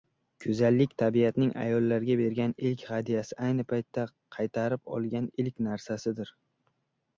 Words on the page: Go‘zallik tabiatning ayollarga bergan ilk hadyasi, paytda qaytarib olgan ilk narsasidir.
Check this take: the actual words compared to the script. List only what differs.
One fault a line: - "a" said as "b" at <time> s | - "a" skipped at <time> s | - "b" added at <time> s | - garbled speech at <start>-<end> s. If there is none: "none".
- "ayni" added at 3.5 s